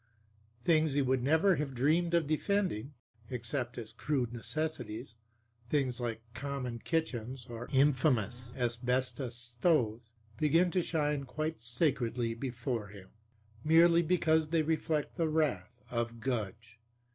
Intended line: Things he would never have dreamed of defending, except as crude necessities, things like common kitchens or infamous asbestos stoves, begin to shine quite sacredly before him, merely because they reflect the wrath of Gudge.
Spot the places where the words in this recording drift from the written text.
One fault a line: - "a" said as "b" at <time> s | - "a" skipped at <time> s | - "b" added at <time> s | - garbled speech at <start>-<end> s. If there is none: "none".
none